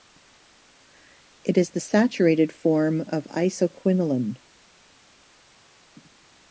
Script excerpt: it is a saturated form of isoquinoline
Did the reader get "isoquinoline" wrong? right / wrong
right